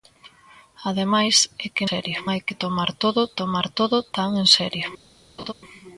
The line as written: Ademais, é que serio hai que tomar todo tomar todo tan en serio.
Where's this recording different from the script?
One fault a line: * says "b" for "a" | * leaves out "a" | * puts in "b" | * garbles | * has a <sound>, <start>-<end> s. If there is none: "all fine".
* has a laugh, 5.4-5.5 s